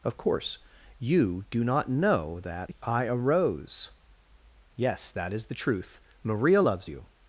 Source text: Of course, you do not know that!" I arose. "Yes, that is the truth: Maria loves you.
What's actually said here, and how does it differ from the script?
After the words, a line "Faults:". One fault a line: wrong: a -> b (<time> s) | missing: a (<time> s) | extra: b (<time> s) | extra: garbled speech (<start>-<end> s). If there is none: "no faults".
Of course, you do not know that!" I arose. "Yes, that is the truth: Maria loves you.
Faults:
no faults